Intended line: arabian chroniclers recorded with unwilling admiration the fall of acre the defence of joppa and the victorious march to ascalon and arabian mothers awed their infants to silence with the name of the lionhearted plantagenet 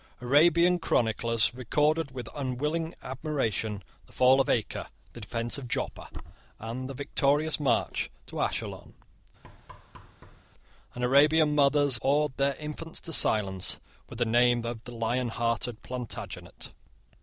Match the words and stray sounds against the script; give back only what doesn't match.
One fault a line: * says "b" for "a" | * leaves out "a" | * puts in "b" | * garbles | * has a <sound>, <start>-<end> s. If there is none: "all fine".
* has a thud, 9.4-10.4 s